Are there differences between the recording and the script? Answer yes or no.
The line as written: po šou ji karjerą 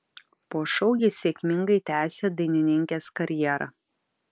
yes